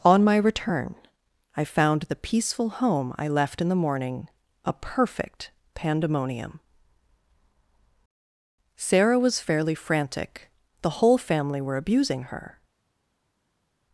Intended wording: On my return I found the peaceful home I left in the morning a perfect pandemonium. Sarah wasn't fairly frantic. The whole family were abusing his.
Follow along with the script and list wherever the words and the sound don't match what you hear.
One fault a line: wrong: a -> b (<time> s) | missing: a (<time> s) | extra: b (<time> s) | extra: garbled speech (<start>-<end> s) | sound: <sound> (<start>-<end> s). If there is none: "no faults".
wrong: wasn't -> was (9.2 s)
wrong: his -> her (12.2 s)